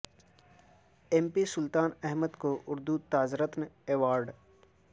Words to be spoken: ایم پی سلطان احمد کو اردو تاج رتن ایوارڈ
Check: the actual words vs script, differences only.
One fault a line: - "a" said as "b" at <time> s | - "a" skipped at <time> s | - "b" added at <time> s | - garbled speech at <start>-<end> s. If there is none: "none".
none